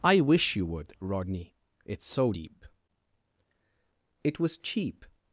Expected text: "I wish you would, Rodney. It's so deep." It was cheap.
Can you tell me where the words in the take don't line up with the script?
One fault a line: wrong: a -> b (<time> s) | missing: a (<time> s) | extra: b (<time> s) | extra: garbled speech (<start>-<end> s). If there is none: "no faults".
no faults